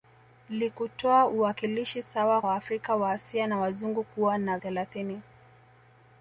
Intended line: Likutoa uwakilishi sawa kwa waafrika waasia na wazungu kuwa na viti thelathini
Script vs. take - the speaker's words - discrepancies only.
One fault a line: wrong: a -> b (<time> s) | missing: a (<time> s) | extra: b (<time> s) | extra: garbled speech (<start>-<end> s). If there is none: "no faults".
missing: kwa (2.4 s)
missing: viti (4.6 s)